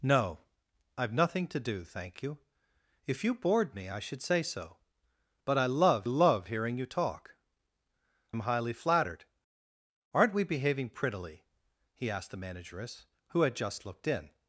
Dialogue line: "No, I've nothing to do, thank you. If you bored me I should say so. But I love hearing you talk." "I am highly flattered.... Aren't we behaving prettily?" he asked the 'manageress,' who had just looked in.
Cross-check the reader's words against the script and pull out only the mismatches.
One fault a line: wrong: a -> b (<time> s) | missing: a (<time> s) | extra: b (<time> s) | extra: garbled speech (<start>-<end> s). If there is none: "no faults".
extra: love (6.1 s)
missing: I (7.4 s)